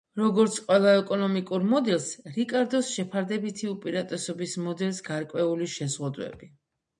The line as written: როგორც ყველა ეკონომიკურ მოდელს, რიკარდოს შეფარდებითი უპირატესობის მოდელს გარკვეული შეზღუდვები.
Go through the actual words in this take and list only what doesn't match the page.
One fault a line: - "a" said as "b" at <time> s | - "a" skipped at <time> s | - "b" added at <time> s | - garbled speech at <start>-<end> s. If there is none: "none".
none